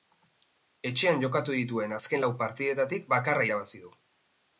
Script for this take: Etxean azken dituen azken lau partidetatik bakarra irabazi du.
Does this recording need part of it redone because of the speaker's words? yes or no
yes